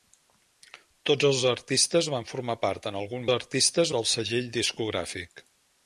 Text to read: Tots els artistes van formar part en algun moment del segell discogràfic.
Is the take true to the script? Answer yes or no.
no